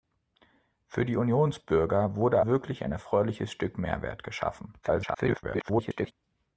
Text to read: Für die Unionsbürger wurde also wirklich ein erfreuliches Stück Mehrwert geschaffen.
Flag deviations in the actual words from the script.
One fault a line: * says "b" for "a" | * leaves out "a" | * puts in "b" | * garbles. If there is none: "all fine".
* leaves out "also"
* garbles